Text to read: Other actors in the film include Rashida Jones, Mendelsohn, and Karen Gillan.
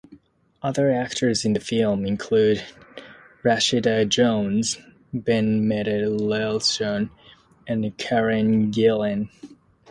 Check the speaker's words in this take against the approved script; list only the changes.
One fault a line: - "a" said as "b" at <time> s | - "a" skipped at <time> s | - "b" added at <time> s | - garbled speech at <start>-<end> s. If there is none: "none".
- "Ben" added at 5.1 s